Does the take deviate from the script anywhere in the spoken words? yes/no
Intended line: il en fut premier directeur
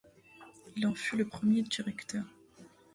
yes